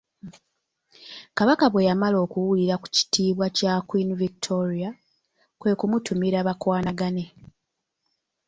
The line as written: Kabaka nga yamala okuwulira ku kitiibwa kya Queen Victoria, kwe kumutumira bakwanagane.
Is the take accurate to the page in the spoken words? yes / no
no